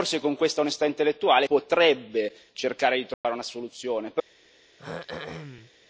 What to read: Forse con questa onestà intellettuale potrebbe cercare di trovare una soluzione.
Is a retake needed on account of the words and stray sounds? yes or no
yes